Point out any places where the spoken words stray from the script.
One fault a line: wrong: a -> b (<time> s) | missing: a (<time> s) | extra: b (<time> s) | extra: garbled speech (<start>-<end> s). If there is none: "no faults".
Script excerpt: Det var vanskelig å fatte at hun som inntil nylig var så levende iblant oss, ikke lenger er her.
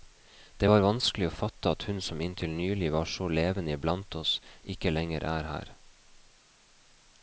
no faults